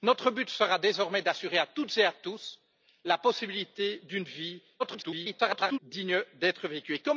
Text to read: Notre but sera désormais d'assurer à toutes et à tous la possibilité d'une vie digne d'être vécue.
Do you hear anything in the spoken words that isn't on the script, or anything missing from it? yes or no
yes